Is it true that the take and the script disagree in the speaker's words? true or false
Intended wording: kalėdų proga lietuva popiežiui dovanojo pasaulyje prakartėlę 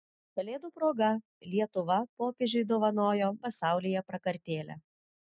false